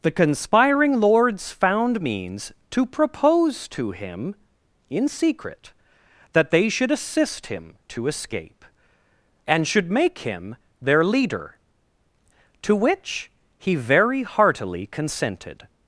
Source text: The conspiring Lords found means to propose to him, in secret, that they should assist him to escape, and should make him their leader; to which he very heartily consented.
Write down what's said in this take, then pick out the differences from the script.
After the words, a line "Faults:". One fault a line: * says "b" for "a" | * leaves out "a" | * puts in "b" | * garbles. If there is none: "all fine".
The conspiring Lords found means to propose to him, in secret, that they should assist him to escape, and should make him their leader; to which he very heartily consented.
Faults:
all fine